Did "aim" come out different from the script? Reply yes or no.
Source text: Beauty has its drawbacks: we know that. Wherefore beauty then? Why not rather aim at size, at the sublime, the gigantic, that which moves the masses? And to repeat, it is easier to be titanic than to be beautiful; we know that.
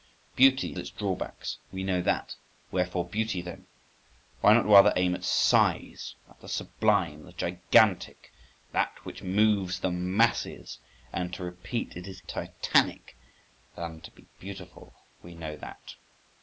no